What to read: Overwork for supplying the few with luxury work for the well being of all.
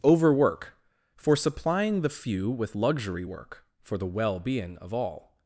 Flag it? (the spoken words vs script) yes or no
no